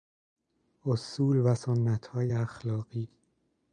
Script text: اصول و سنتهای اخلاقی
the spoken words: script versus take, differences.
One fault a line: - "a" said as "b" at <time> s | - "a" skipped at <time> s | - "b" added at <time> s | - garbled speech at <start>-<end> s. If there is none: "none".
none